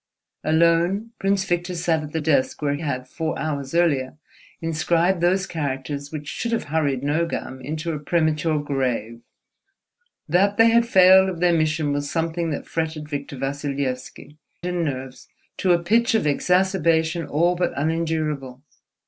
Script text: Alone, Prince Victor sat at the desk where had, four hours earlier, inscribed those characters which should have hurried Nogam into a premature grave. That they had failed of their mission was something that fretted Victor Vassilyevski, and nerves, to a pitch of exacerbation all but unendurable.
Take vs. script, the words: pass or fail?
pass